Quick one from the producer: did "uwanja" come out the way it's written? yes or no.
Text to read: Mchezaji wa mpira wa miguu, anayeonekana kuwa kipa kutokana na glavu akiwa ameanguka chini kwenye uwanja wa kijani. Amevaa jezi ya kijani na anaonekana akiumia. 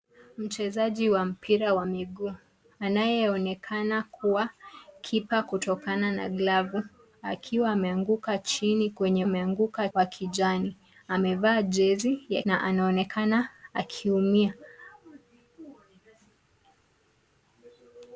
no